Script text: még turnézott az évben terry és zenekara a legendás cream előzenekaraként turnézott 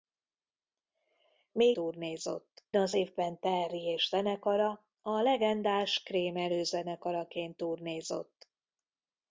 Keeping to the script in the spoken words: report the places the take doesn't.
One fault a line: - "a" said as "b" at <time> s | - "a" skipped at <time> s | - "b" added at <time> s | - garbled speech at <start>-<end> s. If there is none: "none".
none